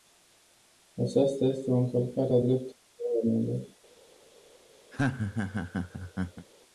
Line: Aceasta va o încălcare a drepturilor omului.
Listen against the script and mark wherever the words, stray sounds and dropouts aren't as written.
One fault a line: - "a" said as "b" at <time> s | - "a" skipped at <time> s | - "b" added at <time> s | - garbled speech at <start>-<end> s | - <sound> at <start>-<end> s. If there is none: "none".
- "va" said as "este" at 1.4 s
- laugh at 4.9-6.5 s